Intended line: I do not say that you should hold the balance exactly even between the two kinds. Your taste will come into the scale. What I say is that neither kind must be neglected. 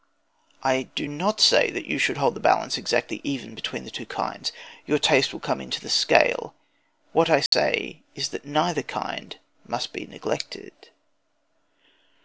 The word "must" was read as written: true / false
true